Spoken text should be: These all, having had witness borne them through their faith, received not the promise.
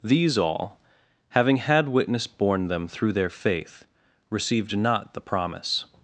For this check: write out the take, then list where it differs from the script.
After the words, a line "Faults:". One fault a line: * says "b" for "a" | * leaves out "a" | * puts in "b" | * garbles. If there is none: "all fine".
These all, having had witness borne them through their faith, received not the promise.
Faults:
all fine